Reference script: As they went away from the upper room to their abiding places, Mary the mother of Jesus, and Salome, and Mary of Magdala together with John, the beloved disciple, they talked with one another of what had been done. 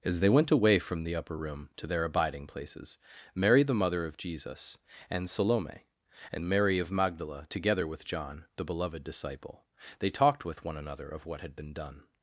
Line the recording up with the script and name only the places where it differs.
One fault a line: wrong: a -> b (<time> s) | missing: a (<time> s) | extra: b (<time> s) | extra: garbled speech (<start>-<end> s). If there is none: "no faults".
no faults